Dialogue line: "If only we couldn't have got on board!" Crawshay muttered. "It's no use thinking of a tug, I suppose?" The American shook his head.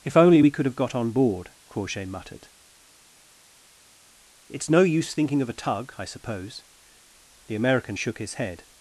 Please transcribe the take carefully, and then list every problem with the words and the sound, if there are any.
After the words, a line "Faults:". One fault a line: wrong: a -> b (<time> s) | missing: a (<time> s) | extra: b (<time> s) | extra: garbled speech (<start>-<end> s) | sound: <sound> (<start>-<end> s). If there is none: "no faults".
"If only we could have got on board!" Crawshay muttered. "It's no use thinking of a tug, I suppose?" The American shook his head.
Faults:
wrong: couldn't -> could (0.5 s)